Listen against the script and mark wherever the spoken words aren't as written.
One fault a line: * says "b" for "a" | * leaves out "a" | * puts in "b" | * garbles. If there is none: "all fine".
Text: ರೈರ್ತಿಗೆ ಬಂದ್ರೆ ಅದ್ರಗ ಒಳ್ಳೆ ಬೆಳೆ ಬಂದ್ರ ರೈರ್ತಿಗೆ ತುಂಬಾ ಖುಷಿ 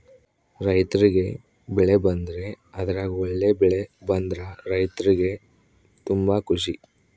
* puts in "ಬೆಳೆ"